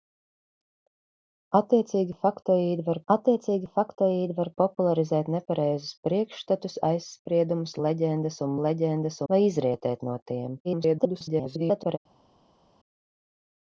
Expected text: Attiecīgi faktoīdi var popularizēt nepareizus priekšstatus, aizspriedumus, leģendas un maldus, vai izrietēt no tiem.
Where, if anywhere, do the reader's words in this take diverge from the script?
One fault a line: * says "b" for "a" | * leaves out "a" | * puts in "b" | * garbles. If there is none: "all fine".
* puts in "attiecīgi faktoīdi var"
* says "leģendas" for "maldus"
* garbles